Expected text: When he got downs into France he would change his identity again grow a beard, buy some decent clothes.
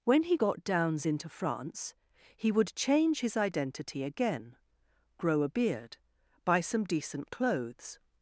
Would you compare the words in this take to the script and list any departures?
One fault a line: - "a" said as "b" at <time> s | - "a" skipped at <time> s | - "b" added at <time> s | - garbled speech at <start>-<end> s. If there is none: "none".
none